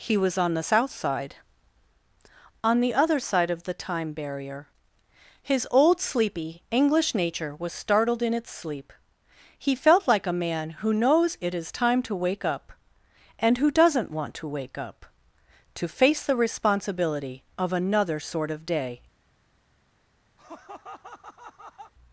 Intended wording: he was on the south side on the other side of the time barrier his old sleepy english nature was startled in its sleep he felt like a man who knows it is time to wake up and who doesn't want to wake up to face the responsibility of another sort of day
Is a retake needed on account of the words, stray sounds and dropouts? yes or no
yes